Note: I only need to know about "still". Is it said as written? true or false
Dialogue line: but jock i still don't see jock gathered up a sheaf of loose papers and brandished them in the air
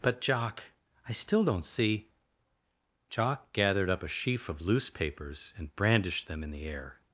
true